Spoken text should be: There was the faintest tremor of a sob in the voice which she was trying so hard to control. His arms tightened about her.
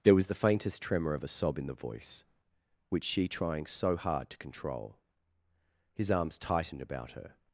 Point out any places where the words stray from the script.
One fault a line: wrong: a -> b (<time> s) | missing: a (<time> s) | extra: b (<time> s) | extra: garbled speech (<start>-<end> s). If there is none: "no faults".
missing: was (3.3 s)